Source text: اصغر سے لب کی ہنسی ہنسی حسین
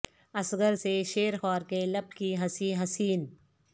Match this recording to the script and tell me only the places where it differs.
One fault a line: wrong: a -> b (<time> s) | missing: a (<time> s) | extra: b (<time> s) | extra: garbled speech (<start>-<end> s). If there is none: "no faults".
extra: شیر خوار کے (1.1 s)
missing: ہنسی (2.7 s)